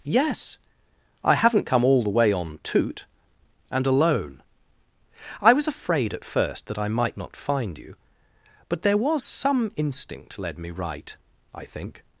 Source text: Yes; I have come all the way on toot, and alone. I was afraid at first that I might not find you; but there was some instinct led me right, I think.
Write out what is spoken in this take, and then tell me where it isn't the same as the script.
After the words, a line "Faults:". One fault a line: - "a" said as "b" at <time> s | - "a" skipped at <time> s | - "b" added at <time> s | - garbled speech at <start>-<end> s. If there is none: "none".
Yes; I haven't come all the way on toot, and alone. I was afraid at first that I might not find you; but there was some instinct led me right, I think.
Faults:
- "have" said as "haven't" at 1.4 s